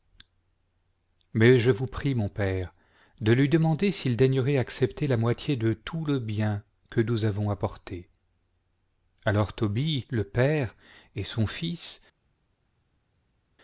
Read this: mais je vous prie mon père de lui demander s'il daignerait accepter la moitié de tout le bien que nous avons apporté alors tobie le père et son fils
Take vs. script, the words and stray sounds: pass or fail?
pass